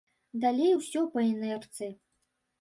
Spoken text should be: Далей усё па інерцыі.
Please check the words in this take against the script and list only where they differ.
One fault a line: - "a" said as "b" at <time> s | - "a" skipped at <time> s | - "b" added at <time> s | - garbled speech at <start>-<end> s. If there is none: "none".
none